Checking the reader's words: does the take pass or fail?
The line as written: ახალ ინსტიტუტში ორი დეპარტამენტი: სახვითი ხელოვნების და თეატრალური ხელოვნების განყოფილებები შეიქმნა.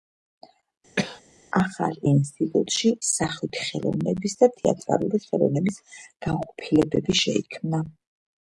fail